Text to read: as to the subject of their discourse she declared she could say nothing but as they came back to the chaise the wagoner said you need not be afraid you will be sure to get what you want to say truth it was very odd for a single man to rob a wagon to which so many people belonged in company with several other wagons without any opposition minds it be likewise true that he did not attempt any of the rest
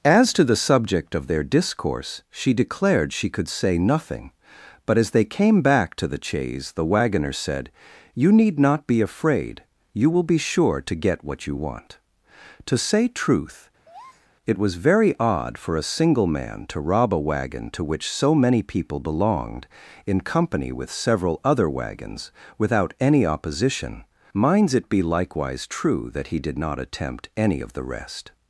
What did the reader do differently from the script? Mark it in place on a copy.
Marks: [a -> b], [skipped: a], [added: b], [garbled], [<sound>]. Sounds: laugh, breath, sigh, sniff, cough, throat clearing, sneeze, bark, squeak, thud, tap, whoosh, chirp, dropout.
as to the subject of their discourse she declared she could say nothing but as they came back to the chaise the wagoner said you need not be afraid you will be sure to get what you want to say truth [breath] it was very odd for a single man to rob a wagon to which so many people belonged in company with several other wagons without any opposition minds it be likewise true that he did not attempt any of the rest